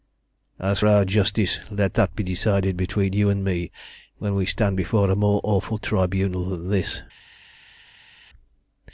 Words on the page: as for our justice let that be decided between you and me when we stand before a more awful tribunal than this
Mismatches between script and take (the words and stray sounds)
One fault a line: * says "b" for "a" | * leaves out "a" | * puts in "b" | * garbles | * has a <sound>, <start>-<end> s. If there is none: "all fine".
* leaves out "for"